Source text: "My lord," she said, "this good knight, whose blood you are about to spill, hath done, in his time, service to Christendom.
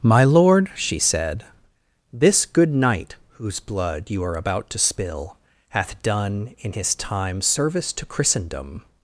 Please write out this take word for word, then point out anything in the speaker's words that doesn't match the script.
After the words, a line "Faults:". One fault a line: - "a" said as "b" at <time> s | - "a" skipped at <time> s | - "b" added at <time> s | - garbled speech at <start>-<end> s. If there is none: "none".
"My lord," she said, "this good knight, whose blood you are about to spill, hath done, in his time, service to Christendom.
Faults:
none